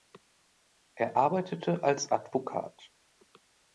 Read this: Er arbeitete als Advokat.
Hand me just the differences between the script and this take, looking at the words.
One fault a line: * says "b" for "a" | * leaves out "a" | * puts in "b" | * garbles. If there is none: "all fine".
all fine